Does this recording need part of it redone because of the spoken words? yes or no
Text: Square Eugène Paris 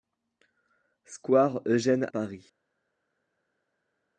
no